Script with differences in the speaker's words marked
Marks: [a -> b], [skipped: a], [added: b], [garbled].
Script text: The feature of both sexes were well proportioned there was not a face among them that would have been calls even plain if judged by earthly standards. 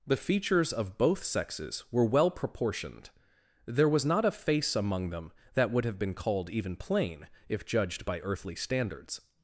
The [feature -> features] of both sexes were well proportioned there was not a face among them that would have been [calls -> called] even plain if judged by earthly standards.